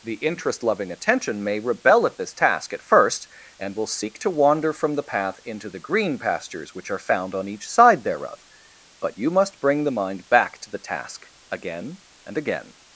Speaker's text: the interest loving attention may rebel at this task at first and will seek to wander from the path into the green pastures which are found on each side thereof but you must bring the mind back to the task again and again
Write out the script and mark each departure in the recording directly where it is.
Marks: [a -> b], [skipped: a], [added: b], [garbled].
the interest loving attention may rebel at this task at first and will seek to wander from the path into the green pastures which are found on each side thereof but you must bring the mind back to the task again and again